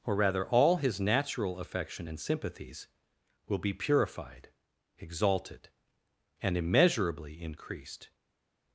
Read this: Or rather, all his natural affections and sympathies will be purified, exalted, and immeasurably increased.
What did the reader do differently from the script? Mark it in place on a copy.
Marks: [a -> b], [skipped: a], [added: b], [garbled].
Or rather, all his natural [affections -> affection] and sympathies will be purified, exalted, and immeasurably increased.